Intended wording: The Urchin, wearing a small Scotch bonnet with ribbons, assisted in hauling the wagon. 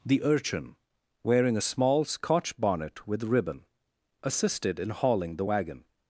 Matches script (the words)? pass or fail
fail